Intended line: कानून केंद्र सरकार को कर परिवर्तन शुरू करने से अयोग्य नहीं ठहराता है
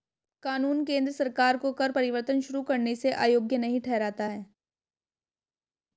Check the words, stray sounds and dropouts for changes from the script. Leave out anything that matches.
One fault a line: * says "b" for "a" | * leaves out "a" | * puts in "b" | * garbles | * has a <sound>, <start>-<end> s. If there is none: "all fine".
all fine